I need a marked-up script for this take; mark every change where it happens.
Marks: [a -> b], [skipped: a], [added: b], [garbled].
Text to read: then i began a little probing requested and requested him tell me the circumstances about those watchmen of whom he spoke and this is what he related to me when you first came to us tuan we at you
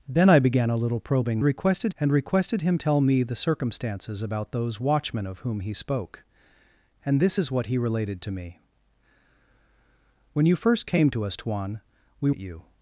then i began a little probing requested and requested him tell me the circumstances about those watchmen of whom he spoke and this is what he related to me when you first came to us tuan we at you